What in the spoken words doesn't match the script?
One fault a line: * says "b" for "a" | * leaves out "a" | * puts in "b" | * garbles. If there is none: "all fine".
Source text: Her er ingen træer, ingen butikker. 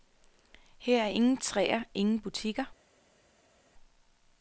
all fine